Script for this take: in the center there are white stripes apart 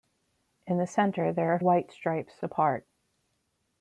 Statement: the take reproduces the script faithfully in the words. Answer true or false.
true